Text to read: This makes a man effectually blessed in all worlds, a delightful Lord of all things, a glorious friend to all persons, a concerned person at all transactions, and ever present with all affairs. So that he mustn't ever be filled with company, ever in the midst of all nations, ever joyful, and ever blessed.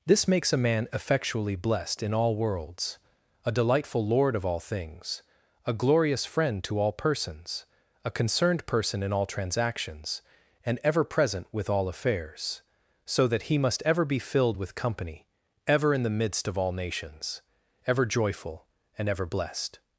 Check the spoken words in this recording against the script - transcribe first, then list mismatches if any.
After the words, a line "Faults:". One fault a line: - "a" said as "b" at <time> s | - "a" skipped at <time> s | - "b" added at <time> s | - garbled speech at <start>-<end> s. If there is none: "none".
This makes a man effectually blessed in all worlds, a delightful Lord of all things, a glorious friend to all persons, a concerned person in all transactions, and ever present with all affairs. So that he must ever be filled with company, ever in the midst of all nations, ever joyful, and ever blessed.
Faults:
- "at" said as "in" at 9.0 s
- "mustn't" said as "must" at 13.6 s